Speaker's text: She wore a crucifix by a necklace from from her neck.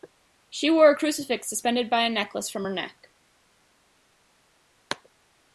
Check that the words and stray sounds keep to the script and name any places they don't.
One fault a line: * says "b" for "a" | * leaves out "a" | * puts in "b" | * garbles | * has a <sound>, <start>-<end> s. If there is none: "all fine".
* puts in "suspended"
* leaves out "from"